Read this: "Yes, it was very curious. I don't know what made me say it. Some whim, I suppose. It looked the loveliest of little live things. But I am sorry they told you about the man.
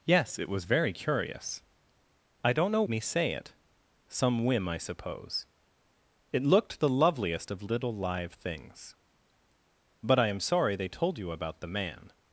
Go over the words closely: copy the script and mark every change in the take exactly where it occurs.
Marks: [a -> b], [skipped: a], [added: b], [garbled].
"Yes, it was very curious. I don't know [skipped: what made] me say it. Some whim, I suppose. It looked the loveliest of little live things. But I am sorry they told you about the man.